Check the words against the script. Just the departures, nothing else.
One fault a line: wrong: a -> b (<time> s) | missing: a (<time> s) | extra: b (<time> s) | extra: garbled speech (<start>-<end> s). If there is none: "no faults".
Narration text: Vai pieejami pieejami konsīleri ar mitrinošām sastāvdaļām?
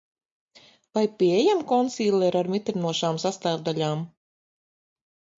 missing: pieejami (1.6 s)